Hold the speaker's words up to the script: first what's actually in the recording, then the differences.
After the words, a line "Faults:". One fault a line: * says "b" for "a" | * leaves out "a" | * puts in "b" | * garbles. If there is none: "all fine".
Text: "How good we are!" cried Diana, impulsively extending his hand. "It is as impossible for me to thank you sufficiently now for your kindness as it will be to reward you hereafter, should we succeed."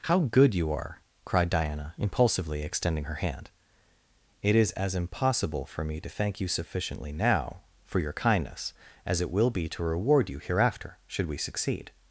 "How good you are!" cried Diana, impulsively extending her hand. "It is as impossible for me to thank you sufficiently now for your kindness as it will be to reward you hereafter, should we succeed."
Faults:
* says "you" for "we"
* says "her" for "his"